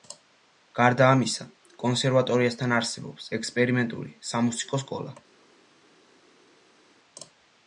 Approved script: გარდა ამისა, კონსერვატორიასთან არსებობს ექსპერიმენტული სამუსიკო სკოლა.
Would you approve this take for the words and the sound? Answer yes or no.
yes